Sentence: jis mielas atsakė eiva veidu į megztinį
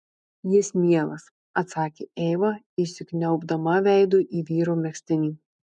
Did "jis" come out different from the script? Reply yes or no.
no